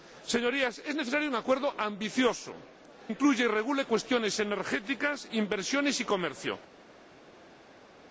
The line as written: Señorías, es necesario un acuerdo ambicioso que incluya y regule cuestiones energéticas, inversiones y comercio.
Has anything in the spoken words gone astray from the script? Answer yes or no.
yes